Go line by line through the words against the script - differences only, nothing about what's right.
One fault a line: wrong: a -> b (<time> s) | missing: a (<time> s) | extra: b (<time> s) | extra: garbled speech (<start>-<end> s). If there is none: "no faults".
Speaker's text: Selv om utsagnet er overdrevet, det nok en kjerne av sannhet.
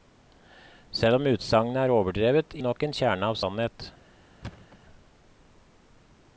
no faults